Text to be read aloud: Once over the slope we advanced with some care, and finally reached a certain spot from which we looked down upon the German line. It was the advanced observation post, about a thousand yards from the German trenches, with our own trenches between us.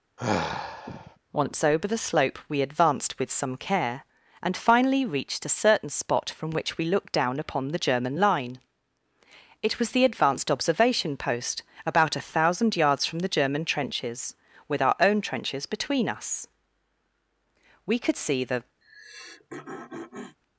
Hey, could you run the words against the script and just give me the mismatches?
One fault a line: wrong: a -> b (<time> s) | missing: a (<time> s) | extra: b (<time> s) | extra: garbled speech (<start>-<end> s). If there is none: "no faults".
extra: We could see the (17.9 s)